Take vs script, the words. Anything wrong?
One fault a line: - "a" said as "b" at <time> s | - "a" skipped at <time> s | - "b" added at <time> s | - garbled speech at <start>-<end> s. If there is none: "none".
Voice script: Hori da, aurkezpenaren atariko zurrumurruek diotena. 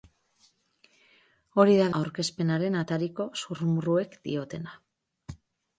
none